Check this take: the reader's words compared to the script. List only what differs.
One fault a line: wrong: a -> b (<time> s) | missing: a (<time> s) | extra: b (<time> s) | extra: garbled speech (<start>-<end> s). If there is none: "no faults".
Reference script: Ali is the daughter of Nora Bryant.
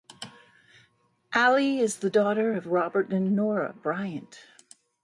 extra: Robert and (2.7 s)